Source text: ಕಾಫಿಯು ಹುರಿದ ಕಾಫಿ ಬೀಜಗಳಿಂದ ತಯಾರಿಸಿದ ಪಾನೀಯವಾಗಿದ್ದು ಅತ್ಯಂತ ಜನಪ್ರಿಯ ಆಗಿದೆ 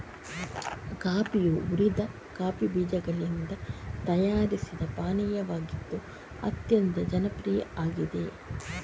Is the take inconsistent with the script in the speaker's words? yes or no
no